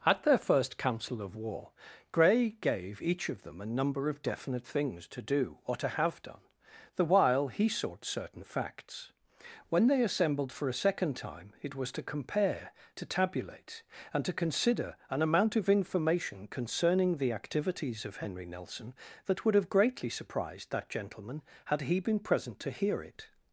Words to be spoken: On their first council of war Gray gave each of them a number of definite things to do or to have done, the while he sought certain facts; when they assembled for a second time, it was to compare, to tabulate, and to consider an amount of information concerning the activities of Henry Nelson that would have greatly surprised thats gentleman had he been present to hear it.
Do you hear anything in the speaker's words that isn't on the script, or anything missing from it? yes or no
yes